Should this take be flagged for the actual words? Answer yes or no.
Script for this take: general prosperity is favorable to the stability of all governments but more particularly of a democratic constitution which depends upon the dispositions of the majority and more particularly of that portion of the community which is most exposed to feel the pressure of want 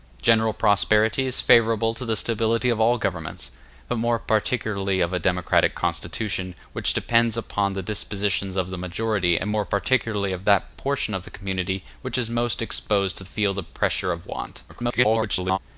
yes